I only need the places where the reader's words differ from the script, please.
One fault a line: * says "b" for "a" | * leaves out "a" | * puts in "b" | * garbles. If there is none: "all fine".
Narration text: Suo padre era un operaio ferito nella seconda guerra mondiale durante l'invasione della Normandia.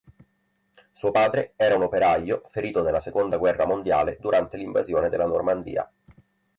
all fine